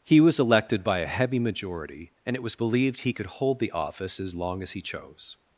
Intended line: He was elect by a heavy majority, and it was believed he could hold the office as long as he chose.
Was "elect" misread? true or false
true